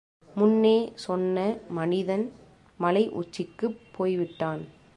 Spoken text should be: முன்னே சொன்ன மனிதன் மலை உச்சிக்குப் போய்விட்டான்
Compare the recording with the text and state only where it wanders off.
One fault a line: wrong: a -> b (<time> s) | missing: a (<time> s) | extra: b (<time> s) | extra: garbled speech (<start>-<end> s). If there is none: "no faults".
no faults